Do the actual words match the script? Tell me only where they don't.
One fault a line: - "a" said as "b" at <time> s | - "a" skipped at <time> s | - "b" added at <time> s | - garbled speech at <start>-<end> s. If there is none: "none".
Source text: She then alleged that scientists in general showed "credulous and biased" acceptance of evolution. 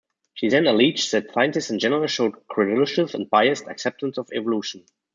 none